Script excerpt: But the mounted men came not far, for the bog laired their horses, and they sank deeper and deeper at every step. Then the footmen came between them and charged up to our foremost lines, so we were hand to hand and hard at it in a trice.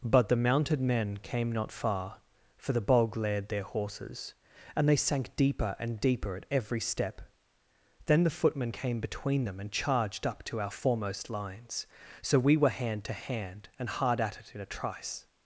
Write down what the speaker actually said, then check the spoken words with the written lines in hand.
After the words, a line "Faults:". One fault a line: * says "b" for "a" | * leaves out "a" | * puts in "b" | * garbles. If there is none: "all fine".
But the mounted men came not far, for the bog laired their horses, and they sank deeper and deeper at every step. Then the footmen came between them and charged up to our foremost lines, so we were hand to hand and hard at it in a trice.
Faults:
all fine